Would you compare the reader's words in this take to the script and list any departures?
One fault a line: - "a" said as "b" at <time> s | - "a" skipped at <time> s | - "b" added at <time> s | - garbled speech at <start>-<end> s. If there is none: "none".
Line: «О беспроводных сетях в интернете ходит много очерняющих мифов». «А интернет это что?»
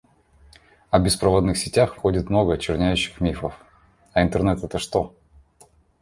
- "интернете" skipped at 2.0 s